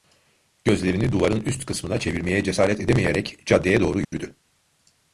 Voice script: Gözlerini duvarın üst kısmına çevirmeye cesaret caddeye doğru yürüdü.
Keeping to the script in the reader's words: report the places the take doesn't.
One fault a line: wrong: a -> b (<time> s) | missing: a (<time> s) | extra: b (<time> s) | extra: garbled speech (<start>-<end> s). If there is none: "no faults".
extra: edemeyerek (2.8 s)